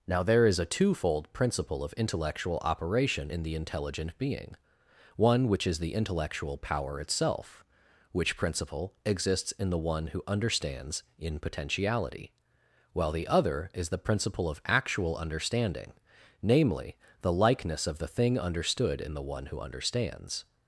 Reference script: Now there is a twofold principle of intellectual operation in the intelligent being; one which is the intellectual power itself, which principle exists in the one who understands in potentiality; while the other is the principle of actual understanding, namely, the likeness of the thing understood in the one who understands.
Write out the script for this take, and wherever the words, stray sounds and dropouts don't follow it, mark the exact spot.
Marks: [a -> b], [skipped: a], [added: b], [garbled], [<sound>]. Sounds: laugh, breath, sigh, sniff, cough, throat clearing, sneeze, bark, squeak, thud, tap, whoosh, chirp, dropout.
Now there is a twofold principle of intellectual operation in the intelligent being; one which is the intellectual power itself, which principle exists in the one who understands in potentiality; while the other is the principle of actual understanding, namely, the likeness of the thing understood in the one who understands.